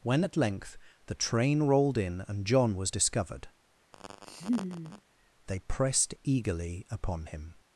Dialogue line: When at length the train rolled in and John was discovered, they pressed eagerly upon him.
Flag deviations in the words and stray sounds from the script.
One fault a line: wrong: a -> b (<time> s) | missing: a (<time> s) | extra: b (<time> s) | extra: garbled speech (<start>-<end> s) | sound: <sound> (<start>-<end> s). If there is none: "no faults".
sound: laugh (3.9-5.0 s)